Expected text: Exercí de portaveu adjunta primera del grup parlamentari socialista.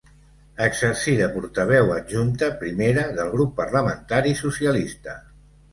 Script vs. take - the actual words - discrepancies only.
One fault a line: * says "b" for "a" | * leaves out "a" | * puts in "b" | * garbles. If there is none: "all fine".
all fine